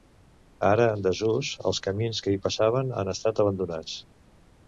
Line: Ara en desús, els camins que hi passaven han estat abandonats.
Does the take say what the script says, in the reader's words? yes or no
yes